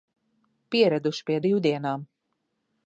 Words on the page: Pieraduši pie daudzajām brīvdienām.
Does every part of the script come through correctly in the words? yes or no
no